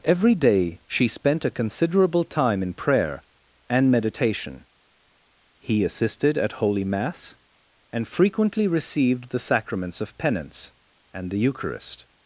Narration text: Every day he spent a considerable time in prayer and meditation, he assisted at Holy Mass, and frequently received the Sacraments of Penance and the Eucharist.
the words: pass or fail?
fail